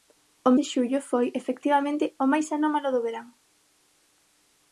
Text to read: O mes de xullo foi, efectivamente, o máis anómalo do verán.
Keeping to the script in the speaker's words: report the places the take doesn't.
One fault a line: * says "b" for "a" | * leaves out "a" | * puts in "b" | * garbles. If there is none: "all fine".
* leaves out "mes"